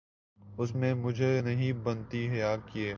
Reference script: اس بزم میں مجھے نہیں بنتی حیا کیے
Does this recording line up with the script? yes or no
no